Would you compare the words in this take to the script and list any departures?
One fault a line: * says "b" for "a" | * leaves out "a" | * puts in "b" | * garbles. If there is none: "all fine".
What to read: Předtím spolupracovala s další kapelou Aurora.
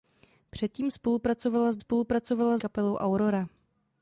* says "spolupracovala" for "další"